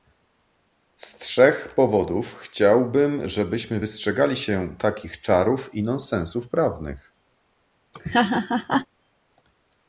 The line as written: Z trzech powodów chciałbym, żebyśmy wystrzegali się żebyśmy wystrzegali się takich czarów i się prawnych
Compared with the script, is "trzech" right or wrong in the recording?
right